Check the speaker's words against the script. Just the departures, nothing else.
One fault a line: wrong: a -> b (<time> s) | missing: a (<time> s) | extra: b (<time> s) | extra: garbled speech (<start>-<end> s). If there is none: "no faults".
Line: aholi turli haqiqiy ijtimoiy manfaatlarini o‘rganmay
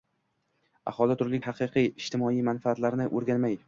no faults